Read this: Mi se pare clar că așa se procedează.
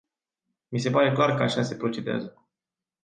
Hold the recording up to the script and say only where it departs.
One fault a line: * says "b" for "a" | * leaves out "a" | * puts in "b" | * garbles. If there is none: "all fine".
all fine